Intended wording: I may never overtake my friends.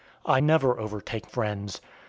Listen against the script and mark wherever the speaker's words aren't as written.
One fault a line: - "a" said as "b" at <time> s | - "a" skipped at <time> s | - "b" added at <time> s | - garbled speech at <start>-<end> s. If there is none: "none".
- "may" skipped at 0.4 s
- "my" skipped at 1.3 s